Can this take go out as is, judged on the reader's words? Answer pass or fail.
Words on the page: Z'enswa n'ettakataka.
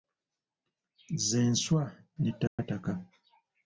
pass